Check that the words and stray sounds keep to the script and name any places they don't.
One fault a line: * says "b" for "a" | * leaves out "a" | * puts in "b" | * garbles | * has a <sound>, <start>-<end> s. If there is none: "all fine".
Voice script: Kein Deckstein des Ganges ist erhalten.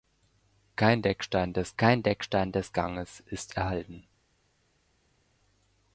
* puts in "kein Deckstein des"